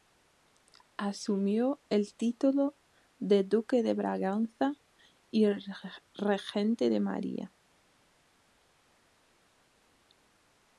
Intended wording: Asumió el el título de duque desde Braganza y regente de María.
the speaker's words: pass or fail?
fail